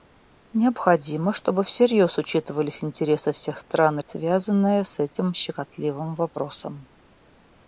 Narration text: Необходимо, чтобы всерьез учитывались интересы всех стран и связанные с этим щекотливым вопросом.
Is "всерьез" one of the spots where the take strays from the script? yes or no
no